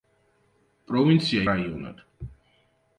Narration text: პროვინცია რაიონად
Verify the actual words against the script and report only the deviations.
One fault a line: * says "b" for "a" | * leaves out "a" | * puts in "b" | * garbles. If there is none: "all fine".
all fine